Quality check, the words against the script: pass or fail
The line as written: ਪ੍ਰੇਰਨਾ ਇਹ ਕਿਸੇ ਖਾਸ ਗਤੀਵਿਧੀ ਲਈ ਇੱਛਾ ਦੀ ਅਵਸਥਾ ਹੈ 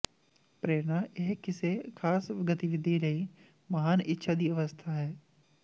fail